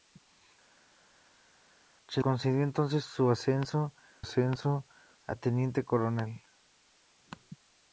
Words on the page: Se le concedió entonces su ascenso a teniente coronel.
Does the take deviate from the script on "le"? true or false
true